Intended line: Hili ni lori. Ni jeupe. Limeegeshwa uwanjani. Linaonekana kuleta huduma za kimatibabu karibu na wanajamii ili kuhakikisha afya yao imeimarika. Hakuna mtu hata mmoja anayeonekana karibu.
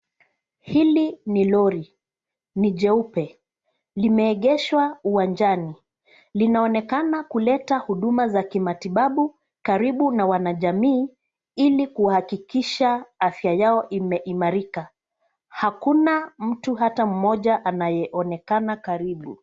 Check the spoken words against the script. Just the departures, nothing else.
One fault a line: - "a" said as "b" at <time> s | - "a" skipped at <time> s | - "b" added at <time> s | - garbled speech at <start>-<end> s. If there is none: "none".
none